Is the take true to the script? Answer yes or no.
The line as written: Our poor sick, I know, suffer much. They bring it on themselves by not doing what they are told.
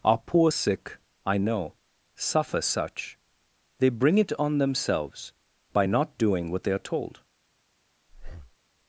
no